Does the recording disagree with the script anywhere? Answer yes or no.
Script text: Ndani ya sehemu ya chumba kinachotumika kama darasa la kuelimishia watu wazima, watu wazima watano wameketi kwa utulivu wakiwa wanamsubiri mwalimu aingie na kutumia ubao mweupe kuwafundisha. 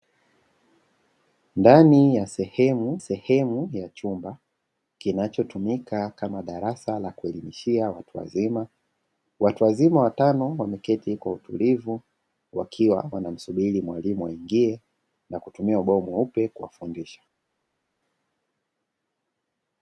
yes